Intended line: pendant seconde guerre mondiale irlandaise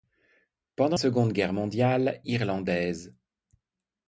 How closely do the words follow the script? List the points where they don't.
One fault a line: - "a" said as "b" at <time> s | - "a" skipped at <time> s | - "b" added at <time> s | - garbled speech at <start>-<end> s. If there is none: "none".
none